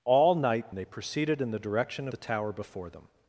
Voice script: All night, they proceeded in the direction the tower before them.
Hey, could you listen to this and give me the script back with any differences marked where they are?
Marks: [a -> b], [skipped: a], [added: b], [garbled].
All night, they proceeded in the direction the tower before them.